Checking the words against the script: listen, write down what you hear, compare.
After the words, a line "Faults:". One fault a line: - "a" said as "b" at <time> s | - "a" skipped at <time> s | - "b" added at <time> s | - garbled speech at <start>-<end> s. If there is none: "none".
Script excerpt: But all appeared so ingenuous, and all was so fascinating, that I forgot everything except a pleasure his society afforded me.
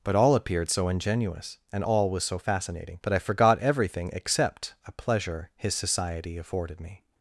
But all appeared so ingenuous, and all was so fascinating, that I forgot everything except a pleasure his society afforded me.
Faults:
none